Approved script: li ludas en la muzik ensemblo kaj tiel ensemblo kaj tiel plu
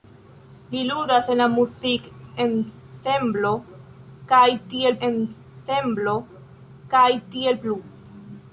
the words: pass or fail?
pass